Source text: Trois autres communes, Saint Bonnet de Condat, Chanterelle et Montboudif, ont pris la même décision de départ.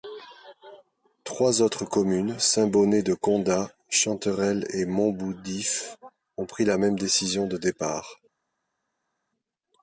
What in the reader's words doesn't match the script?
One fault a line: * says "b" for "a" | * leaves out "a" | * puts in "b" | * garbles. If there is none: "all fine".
all fine